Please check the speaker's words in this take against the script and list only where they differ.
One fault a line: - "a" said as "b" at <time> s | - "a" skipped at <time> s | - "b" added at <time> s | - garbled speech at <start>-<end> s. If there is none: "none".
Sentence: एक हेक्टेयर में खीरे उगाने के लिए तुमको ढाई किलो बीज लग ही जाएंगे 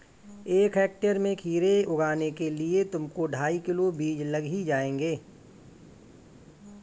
none